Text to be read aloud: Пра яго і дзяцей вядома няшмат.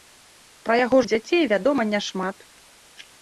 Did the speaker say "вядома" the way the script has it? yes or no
yes